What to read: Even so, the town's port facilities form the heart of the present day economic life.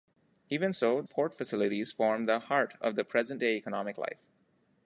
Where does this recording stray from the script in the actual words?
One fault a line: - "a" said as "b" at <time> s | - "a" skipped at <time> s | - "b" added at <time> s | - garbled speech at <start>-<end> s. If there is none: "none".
- "the town's" skipped at 1.0 s